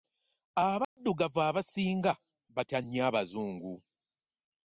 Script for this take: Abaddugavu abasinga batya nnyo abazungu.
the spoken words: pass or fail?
pass